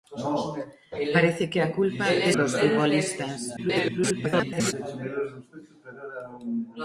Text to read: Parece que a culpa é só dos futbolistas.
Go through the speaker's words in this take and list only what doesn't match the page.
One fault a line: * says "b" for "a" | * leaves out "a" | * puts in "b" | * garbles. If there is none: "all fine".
* leaves out "só"
* garbles